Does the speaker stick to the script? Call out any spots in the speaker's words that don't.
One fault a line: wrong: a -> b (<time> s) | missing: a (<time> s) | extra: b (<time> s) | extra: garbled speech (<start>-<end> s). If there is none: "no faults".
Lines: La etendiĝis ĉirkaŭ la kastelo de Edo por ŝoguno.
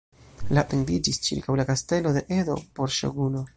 no faults